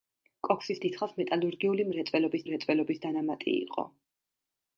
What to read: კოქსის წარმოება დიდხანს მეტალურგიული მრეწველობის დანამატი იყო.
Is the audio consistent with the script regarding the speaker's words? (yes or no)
no